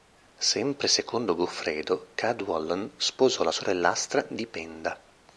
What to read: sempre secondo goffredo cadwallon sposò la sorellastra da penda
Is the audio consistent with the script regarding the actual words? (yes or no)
no